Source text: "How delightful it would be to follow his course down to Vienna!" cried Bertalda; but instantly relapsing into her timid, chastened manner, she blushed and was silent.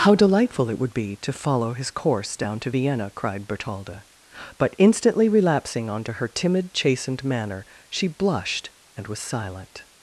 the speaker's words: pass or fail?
fail